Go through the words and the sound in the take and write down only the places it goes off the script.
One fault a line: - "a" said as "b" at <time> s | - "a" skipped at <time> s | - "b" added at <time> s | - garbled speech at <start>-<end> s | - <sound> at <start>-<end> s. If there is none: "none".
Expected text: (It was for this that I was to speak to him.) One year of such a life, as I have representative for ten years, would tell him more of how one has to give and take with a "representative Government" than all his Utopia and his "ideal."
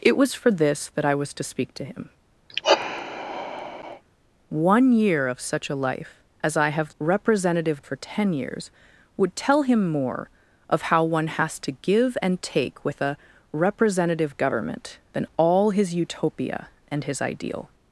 - sigh at 2.5-4.0 s